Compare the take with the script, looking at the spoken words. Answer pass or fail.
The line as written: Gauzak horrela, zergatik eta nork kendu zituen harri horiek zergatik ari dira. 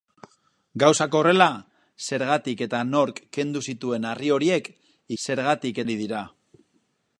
pass